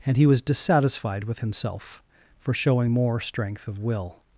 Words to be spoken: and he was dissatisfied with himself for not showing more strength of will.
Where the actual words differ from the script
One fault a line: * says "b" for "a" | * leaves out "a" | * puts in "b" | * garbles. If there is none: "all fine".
* leaves out "not"